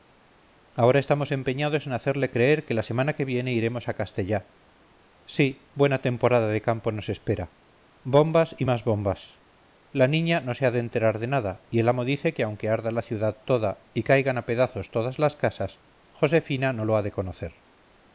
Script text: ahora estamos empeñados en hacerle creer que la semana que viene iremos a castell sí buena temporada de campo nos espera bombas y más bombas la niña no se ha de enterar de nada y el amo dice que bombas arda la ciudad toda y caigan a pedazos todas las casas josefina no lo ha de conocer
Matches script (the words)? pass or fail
fail